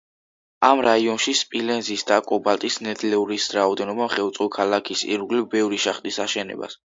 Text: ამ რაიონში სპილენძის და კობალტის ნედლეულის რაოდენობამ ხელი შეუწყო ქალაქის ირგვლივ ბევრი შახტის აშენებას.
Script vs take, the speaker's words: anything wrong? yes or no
yes